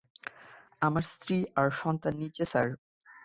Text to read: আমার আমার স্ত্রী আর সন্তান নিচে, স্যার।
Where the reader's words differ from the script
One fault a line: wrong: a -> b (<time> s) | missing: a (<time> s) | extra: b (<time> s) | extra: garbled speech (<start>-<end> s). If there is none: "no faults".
missing: আমার (1.0 s)